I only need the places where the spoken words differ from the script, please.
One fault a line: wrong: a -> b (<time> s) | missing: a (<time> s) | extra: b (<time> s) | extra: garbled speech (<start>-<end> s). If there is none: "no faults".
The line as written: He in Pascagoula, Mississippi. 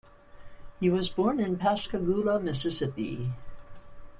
extra: was born (0.9 s)